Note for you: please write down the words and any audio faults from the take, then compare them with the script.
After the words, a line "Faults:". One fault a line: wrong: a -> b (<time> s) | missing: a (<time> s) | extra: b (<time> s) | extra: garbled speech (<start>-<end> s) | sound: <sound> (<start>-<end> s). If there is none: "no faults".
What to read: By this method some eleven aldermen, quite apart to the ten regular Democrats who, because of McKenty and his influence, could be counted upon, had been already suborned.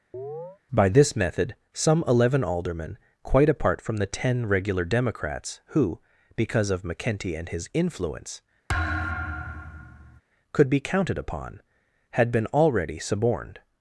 By this method some eleven aldermen, quite apart from the ten regular Democrats who, because of McKenty and his influence, could be counted upon, had been already suborned.
Faults:
sound: chirp (0.1-0.6 s)
wrong: to -> from (3.8 s)
sound: thud (8.7-10.2 s)